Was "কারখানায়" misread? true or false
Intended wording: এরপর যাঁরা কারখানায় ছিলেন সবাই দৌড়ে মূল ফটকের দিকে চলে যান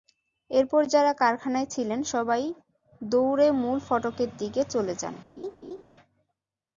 false